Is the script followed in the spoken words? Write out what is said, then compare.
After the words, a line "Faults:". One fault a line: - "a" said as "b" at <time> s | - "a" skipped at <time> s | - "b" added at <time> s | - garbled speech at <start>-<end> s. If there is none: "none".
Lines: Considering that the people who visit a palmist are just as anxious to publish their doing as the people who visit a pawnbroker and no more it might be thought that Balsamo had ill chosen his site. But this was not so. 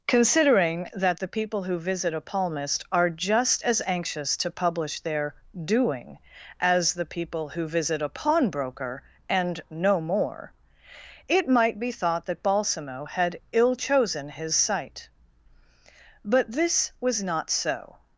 Considering that the people who visit a palmist are just as anxious to publish their doing as the people who visit a pawnbroker and no more it might be thought that Balsamo had ill chosen his site. But this was not so.
Faults:
none